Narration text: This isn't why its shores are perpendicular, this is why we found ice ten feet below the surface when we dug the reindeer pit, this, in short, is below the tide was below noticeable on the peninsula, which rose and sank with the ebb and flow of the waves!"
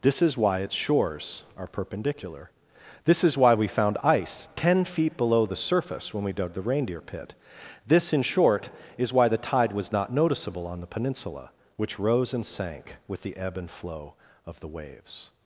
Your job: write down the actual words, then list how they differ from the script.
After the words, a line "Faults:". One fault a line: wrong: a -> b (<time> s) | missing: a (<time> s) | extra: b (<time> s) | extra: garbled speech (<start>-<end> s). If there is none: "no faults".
This is why its shores are perpendicular, this is why we found ice ten feet below the surface when we dug the reindeer pit, this, in short, is why the tide was not noticeable on the peninsula, which rose and sank with the ebb and flow of the waves!"
Faults:
wrong: isn't -> is (0.2 s)
wrong: below -> why (9.1 s)
wrong: below -> not (9.9 s)